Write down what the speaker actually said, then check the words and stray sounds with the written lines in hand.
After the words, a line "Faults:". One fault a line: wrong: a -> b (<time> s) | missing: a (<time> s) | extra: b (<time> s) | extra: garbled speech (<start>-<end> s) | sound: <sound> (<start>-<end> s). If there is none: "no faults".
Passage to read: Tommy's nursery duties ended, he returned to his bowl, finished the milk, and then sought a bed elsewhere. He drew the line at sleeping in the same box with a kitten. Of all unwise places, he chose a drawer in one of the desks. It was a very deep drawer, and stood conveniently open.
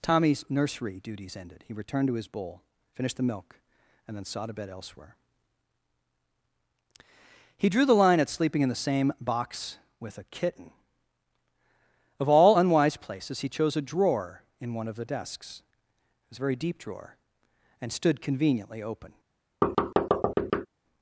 Tommy's nursery duties ended, he returned to his bowl, finished the milk, and then sought a bed elsewhere. He drew the line at sleeping in the same box with a kitten. Of all unwise places, he chose a drawer in one of the desks. It was a very deep drawer, and stood conveniently open.
Faults:
sound: thud (19.6-20.7 s)